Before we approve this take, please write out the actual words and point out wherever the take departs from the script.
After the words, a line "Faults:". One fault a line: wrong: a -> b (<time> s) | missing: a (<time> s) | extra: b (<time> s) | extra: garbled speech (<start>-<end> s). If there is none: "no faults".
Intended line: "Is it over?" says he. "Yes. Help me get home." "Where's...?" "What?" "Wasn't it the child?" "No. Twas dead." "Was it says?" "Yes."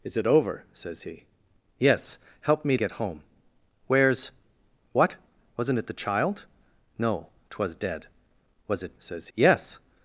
"Is it over?" says he. "Yes. Help me get home." "Where's...?" "What?" "Wasn't it the child?" "No. Twas dead." "Was it says?" "Yes."
Faults:
no faults